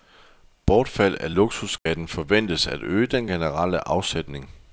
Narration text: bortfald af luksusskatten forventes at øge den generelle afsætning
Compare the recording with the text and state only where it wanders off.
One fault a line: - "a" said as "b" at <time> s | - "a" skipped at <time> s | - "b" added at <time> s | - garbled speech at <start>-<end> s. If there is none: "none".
none